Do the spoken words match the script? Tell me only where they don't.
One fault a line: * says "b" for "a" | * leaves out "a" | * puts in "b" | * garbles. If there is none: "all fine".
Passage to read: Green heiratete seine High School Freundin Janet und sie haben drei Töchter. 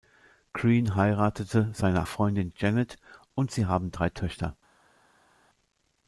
* leaves out "High School"